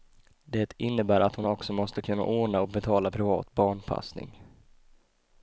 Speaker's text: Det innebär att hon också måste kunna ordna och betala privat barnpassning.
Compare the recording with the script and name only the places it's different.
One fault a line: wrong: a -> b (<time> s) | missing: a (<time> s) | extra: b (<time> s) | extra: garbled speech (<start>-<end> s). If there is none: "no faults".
no faults